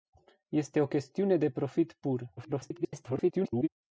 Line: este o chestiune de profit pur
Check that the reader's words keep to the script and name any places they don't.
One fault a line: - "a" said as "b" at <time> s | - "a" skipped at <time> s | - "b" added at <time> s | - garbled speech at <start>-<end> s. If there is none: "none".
- garbled speech at 2.4-3.7 s